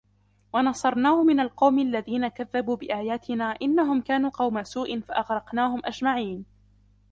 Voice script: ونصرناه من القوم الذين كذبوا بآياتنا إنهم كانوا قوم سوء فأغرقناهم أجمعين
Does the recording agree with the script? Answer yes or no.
yes